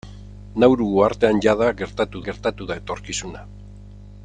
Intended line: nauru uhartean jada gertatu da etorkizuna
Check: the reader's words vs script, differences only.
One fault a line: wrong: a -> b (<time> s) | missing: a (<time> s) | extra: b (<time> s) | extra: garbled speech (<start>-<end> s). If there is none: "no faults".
extra: gertatu (2.3 s)